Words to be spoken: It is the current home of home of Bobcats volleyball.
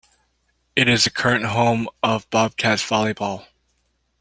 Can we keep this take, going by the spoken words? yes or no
no